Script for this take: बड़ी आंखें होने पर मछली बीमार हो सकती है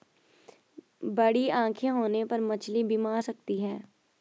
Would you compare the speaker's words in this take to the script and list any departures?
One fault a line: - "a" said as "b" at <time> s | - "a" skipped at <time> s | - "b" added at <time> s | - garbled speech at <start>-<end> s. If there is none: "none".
- "हो" skipped at 3.2 s